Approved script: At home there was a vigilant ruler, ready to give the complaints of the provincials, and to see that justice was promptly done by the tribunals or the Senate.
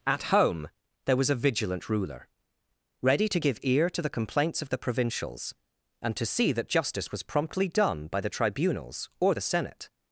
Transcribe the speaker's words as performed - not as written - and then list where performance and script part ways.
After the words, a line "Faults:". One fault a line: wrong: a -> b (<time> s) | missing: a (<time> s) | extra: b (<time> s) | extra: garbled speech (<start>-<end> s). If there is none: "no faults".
At home there was a vigilant ruler, ready to give ear to the complaints of the provincials, and to see that justice was promptly done by the tribunals or the Senate.
Faults:
extra: ear to (3.6 s)